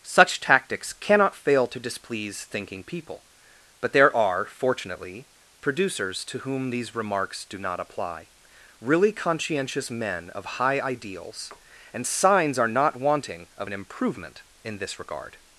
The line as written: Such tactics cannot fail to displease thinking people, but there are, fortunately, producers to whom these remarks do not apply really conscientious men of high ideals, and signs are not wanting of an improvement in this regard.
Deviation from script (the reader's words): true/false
false